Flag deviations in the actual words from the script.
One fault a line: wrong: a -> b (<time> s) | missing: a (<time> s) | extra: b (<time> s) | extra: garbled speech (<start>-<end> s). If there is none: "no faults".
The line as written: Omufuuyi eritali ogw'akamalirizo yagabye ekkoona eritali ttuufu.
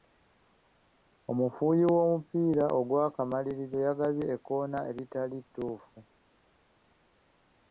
wrong: eritali -> w'omupiira (1.9 s)